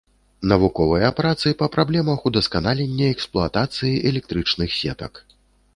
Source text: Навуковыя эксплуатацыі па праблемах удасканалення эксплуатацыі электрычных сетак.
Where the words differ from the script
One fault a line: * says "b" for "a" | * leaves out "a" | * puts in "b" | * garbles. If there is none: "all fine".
* says "працы" for "эксплуатацыі"